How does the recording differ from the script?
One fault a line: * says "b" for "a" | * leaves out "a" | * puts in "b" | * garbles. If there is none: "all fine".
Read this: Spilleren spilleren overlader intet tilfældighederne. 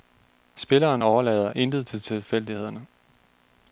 * leaves out "spilleren"
* puts in "til"